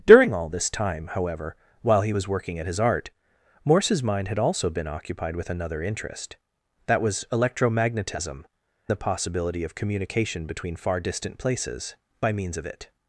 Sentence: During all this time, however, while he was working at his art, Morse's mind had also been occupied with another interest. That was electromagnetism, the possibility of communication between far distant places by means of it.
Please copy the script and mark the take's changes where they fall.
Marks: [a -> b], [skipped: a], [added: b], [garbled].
During all this time, however, while he was working at his art, Morse's mind had also been occupied with another interest. That was electromagnetism, the possibility of communication between far distant places by means of it.